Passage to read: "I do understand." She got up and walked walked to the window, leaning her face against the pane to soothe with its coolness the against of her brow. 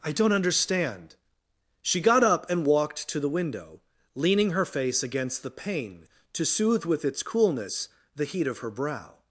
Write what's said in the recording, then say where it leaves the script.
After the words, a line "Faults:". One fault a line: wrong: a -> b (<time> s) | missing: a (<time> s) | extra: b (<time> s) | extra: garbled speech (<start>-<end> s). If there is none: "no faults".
"I don't understand." She got up and walked to the window, leaning her face against the pane to soothe with its coolness the heat of her brow.
Faults:
wrong: do -> don't (0.1 s)
missing: walked (3.1 s)
wrong: against -> heat (8.2 s)